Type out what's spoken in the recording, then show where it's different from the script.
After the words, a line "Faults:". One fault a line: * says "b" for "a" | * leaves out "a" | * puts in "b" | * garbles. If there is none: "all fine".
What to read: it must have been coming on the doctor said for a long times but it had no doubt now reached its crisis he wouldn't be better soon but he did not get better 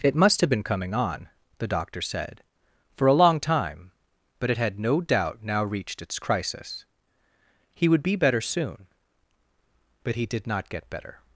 it must have been coming on the doctor said for a long time but it had no doubt now reached its crisis he would be better soon but he did not get better
Faults:
* says "time" for "times"
* says "would" for "wouldn't"